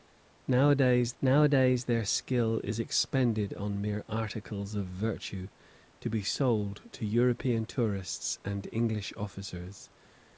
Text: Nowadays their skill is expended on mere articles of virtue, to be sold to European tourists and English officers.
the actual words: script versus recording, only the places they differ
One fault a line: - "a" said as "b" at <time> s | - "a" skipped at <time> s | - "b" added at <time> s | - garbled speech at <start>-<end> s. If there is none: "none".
- "nowadays" added at 1.2 s